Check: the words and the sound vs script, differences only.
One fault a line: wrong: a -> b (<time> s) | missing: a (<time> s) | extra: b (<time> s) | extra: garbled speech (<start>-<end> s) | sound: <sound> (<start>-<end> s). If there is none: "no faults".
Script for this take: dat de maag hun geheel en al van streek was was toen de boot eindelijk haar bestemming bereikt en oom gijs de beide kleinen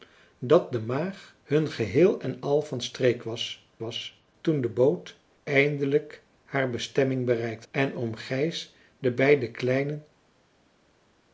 no faults